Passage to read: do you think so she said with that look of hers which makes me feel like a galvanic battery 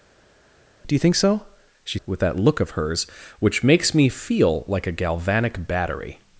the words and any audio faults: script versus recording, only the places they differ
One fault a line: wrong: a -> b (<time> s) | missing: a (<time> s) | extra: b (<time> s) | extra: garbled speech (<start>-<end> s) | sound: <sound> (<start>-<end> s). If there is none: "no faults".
missing: said (2.0 s)